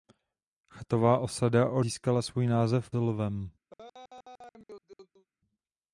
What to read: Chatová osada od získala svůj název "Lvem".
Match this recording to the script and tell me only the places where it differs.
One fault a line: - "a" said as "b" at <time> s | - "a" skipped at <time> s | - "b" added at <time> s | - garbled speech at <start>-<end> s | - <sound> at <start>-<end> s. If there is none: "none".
- laugh at 3.7-5.3 s